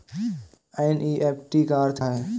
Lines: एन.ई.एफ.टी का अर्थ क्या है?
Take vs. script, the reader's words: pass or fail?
fail